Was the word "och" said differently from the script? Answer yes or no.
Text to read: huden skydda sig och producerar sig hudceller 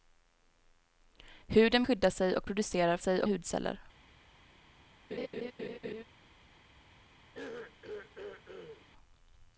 no